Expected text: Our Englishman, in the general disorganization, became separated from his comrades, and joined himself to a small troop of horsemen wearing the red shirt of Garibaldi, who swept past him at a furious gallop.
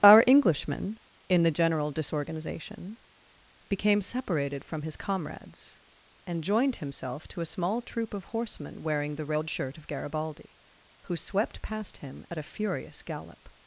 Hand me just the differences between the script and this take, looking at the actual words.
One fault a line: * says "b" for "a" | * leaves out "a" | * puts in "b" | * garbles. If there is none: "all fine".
all fine